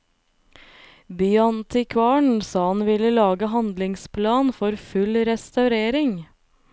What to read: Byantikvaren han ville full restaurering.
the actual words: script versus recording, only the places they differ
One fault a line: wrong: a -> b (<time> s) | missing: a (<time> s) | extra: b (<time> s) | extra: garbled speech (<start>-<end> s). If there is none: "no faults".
extra: sa (2.4 s)
extra: lage handlingsplan for (3.1 s)